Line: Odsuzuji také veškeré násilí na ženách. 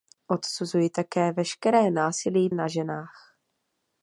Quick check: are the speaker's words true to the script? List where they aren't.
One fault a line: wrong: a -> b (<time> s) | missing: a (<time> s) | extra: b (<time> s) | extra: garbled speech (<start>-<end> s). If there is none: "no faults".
no faults